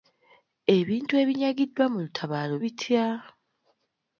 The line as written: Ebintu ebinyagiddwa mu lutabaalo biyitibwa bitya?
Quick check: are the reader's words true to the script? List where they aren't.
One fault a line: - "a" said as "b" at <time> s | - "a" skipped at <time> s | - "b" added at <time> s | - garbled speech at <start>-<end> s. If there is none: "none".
- "biyitibwa" skipped at 2.5 s